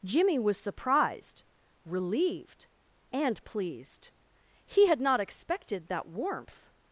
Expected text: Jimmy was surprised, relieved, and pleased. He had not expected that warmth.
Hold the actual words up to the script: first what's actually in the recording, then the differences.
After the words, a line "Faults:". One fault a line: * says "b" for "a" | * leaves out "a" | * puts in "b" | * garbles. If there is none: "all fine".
Jimmy was surprised, relieved, and pleased. He had not expected that warmth.
Faults:
all fine